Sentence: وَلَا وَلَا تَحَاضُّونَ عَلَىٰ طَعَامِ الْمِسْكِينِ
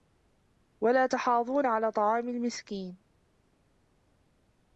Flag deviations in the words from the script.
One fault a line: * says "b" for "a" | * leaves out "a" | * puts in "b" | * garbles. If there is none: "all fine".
* leaves out "وَلَا"